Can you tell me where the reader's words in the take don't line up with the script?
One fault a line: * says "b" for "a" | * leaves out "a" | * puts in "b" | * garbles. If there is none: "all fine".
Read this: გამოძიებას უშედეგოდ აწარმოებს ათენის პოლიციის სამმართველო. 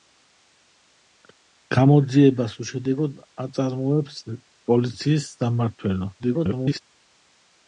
* leaves out "ათენის"
* garbles